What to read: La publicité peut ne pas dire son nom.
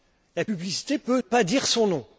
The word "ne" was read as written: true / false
false